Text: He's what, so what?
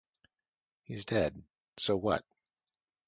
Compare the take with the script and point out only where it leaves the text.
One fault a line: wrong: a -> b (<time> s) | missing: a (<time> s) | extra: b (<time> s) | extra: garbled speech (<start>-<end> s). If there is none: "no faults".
wrong: what -> dead (1.1 s)